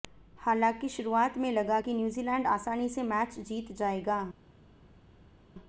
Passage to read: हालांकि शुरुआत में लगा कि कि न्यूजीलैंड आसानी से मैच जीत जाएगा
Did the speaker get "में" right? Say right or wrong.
right